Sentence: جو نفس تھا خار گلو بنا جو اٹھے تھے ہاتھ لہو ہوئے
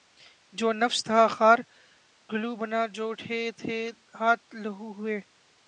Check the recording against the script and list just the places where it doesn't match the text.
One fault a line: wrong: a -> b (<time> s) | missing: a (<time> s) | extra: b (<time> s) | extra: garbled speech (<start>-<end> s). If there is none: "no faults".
no faults